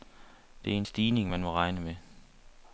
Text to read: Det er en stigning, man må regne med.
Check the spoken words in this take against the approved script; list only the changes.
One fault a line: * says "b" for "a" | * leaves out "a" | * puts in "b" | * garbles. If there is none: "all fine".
all fine